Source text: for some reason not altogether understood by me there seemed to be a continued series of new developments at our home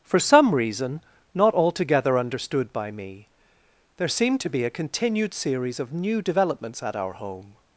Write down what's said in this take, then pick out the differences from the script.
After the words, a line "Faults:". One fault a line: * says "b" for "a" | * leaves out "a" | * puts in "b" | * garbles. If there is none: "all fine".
for some reason not altogether understood by me there seemed to be a continued series of new developments at our home
Faults:
all fine